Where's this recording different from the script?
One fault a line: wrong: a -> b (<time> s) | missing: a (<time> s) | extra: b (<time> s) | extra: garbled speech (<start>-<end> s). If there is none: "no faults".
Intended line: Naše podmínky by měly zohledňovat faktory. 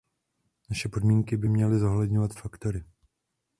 no faults